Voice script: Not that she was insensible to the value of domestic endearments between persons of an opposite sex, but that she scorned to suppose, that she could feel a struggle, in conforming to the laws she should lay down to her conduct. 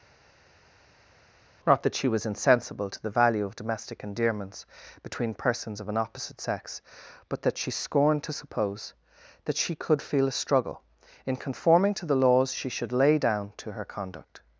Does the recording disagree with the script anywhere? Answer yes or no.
no